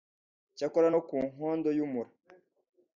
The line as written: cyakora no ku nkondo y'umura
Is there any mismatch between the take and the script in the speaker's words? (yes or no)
no